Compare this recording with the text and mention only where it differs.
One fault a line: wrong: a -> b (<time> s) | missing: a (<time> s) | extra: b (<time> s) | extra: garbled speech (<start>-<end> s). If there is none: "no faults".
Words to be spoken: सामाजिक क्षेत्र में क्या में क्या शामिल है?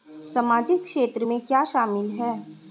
missing: में क्या (1.6 s)